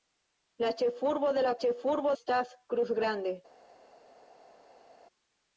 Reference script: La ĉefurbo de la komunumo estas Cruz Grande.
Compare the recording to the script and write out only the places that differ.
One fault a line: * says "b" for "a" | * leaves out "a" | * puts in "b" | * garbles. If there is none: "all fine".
* says "ĉefurbo" for "komunumo"